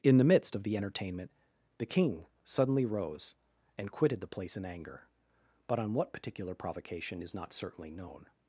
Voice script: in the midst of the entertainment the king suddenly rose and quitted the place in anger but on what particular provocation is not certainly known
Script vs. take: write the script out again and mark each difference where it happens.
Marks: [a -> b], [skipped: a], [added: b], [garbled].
in the midst of the entertainment the king suddenly rose and quitted the place in anger but on what particular provocation is not certainly known